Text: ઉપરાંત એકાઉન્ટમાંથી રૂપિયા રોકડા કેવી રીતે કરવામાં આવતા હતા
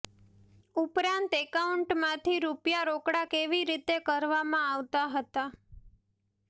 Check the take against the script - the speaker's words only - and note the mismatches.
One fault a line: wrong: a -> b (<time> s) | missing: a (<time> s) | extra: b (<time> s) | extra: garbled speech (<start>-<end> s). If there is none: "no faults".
no faults